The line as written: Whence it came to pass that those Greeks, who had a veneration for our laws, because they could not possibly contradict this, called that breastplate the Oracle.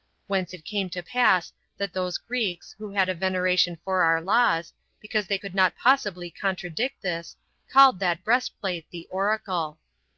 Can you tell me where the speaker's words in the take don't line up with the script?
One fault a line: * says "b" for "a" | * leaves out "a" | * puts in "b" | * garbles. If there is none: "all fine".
all fine